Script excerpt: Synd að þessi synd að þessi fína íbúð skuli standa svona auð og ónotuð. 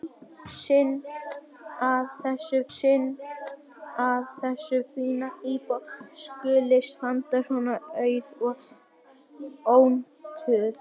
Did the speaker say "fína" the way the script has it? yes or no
yes